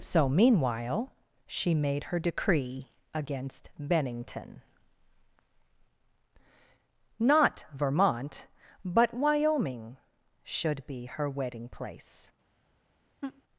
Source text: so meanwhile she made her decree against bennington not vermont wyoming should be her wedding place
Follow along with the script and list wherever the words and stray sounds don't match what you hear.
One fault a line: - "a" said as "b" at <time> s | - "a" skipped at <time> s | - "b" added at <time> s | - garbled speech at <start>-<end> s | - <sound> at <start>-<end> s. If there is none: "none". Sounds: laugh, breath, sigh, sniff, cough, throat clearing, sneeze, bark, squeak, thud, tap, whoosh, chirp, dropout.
- "but" added at 8.8 s
- laugh at 13.2-13.4 s